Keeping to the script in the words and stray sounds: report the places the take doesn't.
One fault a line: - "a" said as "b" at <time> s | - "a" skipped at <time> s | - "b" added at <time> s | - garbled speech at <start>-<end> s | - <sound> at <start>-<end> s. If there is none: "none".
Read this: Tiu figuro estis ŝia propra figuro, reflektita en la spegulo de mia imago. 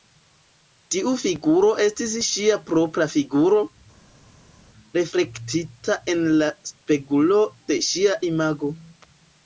- "mia" said as "ŝia" at 7.9 s